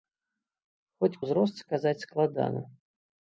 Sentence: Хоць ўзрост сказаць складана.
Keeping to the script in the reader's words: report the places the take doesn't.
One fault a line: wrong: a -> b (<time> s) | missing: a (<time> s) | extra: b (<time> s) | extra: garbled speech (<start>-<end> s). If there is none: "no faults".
no faults